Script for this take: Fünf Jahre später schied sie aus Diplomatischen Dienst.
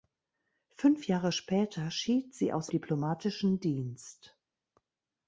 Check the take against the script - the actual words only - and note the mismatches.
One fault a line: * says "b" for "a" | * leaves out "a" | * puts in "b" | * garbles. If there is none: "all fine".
all fine